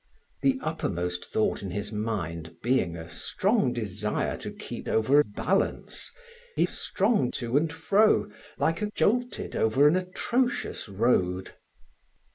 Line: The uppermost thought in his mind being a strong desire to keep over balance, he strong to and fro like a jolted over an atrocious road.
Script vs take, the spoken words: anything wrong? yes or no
no